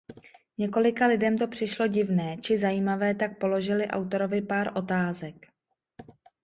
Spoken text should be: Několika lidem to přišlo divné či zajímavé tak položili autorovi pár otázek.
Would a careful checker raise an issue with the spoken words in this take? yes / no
no